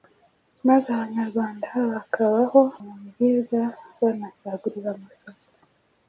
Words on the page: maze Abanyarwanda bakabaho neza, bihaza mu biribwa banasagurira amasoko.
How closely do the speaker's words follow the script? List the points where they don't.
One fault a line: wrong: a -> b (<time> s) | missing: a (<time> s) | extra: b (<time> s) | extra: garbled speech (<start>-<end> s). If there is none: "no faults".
missing: neza bihaza (2.6 s)